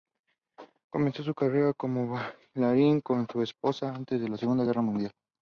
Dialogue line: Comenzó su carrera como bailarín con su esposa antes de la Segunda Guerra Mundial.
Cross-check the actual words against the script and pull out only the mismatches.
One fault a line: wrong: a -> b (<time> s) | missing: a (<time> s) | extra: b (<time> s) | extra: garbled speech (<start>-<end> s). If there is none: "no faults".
no faults